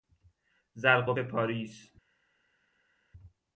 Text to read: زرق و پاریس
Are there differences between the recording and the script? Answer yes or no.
no